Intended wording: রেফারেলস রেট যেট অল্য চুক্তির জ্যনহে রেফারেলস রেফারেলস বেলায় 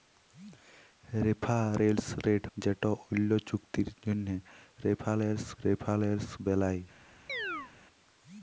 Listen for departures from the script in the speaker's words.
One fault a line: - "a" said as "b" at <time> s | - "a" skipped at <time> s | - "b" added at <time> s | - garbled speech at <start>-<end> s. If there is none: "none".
none